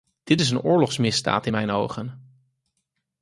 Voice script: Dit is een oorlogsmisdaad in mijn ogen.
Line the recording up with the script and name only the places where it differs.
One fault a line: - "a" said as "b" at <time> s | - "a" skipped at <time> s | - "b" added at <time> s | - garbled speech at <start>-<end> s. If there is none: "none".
none